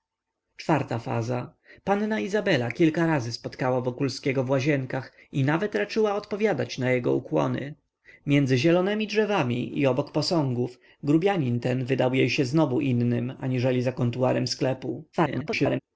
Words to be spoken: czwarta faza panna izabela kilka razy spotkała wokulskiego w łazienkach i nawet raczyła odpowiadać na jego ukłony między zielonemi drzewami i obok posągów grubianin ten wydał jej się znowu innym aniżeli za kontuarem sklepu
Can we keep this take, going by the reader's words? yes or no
no